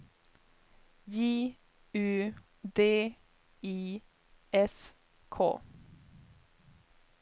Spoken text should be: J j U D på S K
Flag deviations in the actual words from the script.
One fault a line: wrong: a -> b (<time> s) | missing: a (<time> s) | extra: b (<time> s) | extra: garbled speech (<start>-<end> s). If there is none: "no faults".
missing: j (1.6 s)
wrong: på -> I (3.6 s)